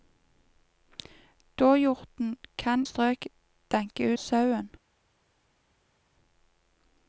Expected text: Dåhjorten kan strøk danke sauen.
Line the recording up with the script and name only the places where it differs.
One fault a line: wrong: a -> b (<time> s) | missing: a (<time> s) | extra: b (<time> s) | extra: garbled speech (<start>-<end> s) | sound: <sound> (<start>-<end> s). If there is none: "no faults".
no faults